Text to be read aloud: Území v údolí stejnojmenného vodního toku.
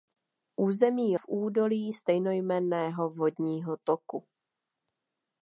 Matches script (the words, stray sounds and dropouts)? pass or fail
pass